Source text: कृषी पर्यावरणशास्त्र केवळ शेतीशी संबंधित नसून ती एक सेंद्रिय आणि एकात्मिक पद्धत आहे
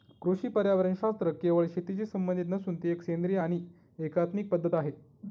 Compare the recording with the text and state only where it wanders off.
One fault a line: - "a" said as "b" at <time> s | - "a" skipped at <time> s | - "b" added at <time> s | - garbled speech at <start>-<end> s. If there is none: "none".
none